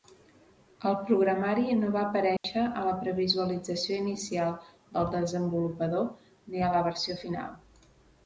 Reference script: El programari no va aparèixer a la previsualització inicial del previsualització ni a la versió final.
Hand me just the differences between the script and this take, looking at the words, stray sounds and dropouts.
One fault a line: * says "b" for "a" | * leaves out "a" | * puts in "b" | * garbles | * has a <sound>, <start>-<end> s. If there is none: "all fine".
* has a dropout, 2.4-2.4 s
* says "desenvolupador" for "previsualització"